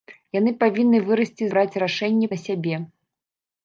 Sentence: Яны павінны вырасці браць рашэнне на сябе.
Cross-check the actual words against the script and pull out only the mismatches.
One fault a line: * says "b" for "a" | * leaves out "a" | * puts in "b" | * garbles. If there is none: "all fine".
all fine